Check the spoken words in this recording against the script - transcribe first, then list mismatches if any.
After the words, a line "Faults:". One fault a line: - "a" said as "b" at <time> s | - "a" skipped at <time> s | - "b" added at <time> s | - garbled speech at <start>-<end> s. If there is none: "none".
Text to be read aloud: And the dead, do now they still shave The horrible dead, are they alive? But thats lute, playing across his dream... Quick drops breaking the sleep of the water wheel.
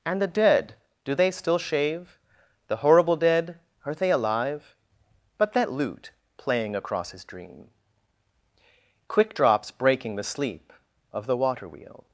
And the dead, do they still shave The horrible dead, are they alive? But that lute, playing across his dream... Quick drops breaking the sleep of the water wheel.
Faults:
- "now" skipped at 1.1 s
- "thats" said as "that" at 5.5 s